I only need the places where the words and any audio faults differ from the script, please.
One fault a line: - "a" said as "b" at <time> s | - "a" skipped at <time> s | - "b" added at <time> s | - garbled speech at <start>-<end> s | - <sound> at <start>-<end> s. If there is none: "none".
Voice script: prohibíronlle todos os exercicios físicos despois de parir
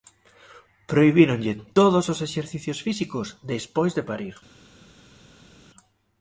none